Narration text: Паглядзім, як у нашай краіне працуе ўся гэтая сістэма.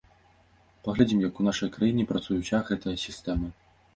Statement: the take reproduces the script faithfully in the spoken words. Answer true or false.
true